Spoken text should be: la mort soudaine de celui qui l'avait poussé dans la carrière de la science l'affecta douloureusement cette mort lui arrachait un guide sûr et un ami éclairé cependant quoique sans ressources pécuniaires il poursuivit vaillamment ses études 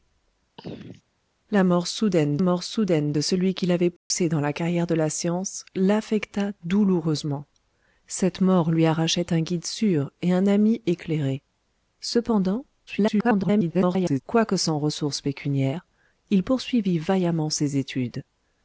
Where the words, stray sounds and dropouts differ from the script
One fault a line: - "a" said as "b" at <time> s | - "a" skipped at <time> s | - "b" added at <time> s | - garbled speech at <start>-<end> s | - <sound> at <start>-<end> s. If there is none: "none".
- throat clearing at 0.6-1.0 s
- "mort soudaine" added at 2.4 s
- dropout at 4.0-4.1 s
- garbled speech at 12.9-14.2 s